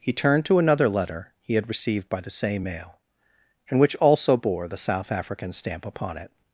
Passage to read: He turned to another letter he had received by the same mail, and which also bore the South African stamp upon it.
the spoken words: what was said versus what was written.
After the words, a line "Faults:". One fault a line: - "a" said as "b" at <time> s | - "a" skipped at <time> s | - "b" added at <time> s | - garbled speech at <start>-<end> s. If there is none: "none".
He turned to another letter he had received by the same mail, and which also bore the South African stamp upon it.
Faults:
none